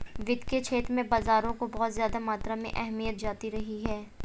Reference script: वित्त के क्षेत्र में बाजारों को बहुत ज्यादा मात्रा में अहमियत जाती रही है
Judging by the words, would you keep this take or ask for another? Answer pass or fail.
pass